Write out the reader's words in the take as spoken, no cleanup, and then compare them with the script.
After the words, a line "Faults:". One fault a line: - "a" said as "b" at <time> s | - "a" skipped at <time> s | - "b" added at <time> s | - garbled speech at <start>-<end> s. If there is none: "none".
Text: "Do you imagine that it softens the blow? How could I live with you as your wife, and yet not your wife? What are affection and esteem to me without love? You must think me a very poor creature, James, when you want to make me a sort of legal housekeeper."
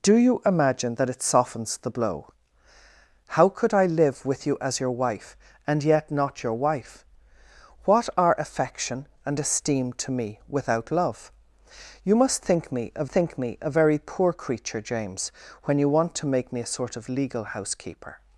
"Do you imagine that it softens the blow? How could I live with you as your wife, and yet not your wife? What are affection and esteem to me without love? You must think me a think me a very poor creature, James, when you want to make me a sort of legal housekeeper."
Faults:
- "think me a" added at 13.1 s